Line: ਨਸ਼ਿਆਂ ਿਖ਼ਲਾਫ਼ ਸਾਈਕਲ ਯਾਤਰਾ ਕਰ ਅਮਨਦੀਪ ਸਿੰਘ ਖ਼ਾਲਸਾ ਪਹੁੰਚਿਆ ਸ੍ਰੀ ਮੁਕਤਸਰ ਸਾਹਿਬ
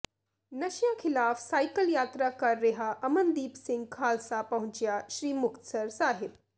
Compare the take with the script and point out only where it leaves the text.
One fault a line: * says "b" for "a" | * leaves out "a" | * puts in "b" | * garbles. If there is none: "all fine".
* puts in "ਰਿਹਾ"